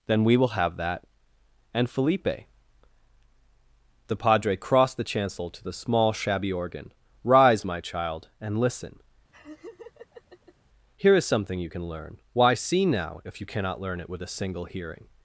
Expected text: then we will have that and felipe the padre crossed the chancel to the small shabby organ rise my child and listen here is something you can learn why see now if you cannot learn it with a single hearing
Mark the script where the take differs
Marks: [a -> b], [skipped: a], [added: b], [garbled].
then we will have that and felipe the padre crossed the chancel to the small shabby organ rise my child and listen here is something you can learn why see now if you cannot learn it with a single hearing